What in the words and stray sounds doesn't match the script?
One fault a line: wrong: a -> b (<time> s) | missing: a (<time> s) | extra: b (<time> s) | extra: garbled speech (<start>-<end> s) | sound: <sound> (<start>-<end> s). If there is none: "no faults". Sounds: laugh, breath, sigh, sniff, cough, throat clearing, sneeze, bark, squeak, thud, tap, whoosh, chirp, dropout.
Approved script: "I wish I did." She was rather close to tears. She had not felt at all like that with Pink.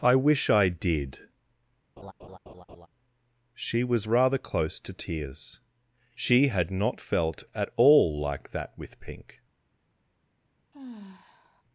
sound: laugh (2.0-2.9 s)
sound: sigh (10.7-11.6 s)